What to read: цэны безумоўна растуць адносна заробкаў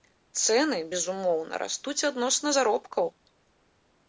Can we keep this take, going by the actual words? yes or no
yes